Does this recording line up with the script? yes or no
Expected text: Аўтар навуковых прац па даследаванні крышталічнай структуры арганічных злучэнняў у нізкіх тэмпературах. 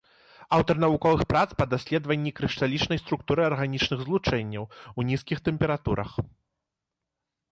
yes